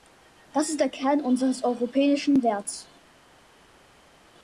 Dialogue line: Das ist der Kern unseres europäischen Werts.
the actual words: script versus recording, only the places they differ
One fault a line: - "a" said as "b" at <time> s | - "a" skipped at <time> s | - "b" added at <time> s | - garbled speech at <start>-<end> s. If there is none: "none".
none